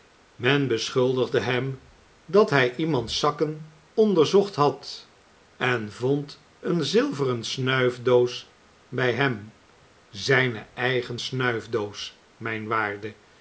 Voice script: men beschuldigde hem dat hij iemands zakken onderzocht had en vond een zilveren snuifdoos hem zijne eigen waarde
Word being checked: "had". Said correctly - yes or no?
yes